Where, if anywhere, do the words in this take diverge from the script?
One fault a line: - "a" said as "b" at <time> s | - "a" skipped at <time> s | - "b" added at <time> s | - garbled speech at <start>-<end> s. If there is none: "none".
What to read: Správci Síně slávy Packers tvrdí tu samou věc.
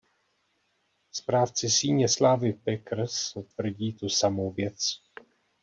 none